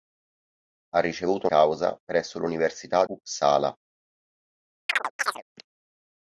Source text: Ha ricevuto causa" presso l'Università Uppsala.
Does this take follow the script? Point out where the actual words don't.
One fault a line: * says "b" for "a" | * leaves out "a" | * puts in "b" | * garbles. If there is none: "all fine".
all fine